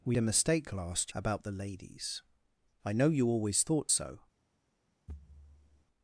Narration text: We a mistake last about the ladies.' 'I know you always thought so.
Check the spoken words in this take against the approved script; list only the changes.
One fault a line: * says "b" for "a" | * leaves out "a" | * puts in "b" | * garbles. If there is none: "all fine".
all fine